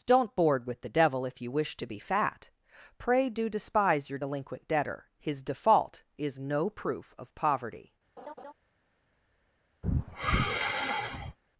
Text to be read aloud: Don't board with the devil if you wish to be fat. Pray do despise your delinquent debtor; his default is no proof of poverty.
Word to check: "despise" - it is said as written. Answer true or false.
true